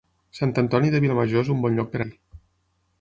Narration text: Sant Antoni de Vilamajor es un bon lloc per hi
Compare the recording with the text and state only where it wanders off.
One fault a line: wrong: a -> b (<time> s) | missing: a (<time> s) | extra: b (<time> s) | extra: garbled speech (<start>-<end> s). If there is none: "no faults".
no faults